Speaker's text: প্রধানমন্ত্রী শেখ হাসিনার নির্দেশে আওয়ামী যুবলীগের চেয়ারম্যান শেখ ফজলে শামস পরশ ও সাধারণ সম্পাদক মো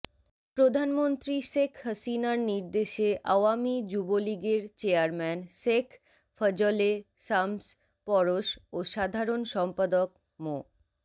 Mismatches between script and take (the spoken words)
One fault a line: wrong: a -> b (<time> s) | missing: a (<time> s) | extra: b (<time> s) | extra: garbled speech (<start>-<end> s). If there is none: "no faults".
no faults